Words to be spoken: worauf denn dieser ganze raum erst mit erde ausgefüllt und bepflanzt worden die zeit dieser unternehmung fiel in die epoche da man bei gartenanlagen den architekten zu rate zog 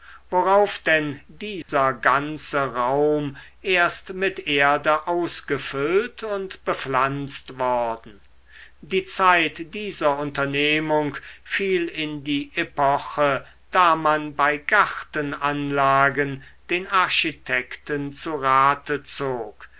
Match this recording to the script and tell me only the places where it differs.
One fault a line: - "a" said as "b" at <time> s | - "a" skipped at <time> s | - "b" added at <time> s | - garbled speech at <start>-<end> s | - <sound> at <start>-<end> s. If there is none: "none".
- dropout at 1.6-1.7 s